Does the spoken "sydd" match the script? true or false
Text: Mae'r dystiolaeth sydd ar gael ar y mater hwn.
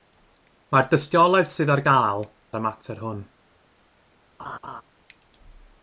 true